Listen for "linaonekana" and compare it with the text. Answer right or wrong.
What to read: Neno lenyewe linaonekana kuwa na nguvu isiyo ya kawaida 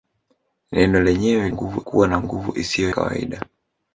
wrong